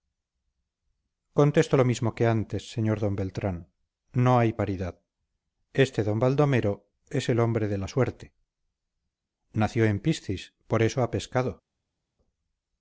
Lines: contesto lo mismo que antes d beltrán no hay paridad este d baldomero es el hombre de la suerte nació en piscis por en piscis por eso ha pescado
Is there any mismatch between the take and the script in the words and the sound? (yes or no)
yes